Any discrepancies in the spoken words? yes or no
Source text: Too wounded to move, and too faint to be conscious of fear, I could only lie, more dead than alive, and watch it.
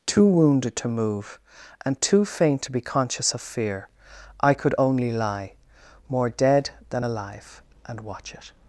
no